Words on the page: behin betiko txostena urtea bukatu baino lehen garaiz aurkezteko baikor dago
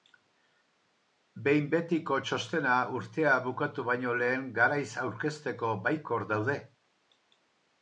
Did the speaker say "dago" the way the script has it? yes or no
no